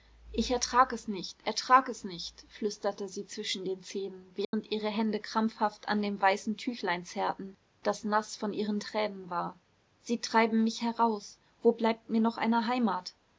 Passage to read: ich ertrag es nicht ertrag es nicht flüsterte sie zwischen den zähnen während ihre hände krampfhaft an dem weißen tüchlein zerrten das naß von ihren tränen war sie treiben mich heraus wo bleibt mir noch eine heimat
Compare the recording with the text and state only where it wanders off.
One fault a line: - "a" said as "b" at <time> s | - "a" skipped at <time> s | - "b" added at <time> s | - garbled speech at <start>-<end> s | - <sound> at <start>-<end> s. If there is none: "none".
- dropout at 4.4-4.5 s